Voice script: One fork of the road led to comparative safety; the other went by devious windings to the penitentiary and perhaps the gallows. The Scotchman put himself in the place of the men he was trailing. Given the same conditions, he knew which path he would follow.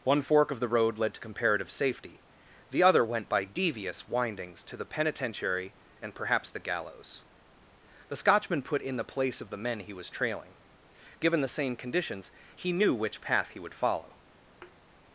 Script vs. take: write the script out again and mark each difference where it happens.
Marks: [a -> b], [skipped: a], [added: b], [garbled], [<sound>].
One fork of the road led to comparative safety; the other went by devious windings to the penitentiary and perhaps the gallows. The Scotchman put [skipped: himself] in the place of the men he was trailing. Given the same conditions, he knew which path he would follow. [thud]